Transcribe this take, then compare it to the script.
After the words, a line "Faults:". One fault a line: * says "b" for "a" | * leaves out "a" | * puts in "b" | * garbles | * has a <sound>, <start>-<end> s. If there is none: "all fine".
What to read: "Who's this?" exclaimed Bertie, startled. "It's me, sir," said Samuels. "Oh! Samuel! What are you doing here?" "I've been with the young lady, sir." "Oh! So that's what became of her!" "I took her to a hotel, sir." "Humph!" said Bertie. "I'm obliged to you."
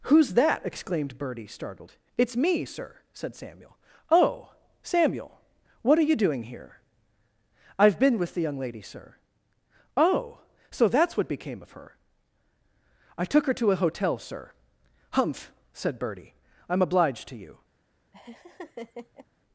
"Who's that?" exclaimed Bertie, startled. "It's me, sir," said Samuel. "Oh! Samuel! What are you doing here?" "I've been with the young lady, sir." "Oh! So that's what became of her!" "I took her to a hotel, sir." "Humph!" said Bertie. "I'm obliged to you."
Faults:
* says "that" for "this"
* says "Samuel" for "Samuels"
* has a laugh, 18.1-19.3 s